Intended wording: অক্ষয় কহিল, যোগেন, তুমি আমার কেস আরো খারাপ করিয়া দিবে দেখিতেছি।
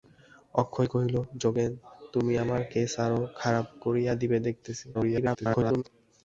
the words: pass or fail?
fail